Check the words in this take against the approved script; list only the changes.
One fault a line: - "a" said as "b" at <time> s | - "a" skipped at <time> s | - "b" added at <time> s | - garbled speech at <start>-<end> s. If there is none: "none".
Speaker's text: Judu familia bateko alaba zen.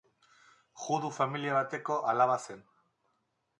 none